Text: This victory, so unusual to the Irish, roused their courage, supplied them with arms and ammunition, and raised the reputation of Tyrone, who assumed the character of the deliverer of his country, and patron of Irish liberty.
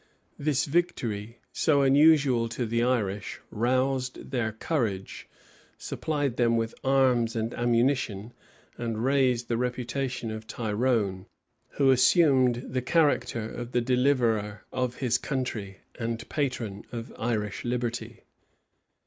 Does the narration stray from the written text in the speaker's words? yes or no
no